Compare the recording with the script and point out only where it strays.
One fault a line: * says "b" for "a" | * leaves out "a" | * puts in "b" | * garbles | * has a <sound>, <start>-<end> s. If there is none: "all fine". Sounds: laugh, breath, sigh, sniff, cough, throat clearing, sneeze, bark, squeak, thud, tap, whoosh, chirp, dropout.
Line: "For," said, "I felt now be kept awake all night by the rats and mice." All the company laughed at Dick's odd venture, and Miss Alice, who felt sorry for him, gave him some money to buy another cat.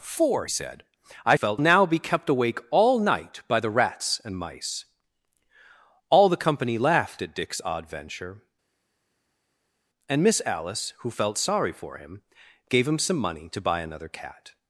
all fine